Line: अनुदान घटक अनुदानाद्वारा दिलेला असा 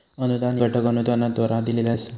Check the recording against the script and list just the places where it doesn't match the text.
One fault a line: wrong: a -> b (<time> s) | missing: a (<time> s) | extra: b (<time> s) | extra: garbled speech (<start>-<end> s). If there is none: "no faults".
no faults